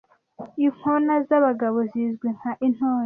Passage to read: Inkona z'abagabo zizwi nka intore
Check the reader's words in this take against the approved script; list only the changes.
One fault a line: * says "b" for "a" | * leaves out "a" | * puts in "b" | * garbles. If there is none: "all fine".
all fine